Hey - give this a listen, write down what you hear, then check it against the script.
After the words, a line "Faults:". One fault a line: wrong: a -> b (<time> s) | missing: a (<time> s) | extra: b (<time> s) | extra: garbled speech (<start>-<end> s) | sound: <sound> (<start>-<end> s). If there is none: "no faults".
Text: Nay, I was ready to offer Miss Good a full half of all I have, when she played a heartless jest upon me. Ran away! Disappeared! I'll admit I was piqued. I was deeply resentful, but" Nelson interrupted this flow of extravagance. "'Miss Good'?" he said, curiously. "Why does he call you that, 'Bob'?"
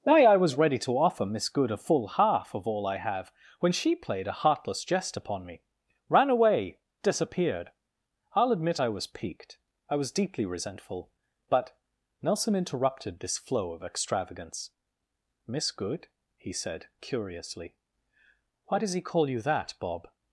Nay, I was ready to offer Miss Good a full half of all I have, when she played a heartless jest upon me. Ran away! Disappeared! I'll admit I was piqued. I was deeply resentful, but" Nelson interrupted this flow of extravagance. "'Miss Good'?" he said, curiously. "Why does he call you that, 'Bob'?"
Faults:
no faults